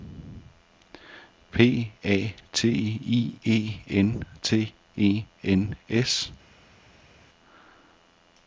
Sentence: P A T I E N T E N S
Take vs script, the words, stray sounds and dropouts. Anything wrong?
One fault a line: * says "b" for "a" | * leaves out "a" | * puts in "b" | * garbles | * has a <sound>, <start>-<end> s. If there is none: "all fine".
all fine